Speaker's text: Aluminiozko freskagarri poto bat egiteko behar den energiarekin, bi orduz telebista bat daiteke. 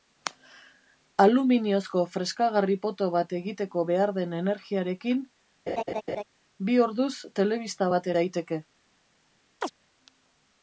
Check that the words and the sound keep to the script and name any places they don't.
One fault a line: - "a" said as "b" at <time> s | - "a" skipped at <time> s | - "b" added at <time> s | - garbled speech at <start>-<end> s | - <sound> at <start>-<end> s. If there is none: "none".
- laugh at 5.7-6.2 s
- chirp at 9.6-9.7 s